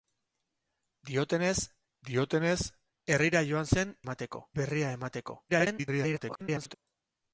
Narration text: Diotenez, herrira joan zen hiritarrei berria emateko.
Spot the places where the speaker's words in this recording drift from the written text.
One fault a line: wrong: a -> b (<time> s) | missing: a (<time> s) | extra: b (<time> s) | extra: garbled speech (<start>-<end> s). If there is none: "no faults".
extra: diotenez (2.1 s)
wrong: hiritarrei -> emateko (4.1 s)
extra: garbled speech (5.5-6.7 s)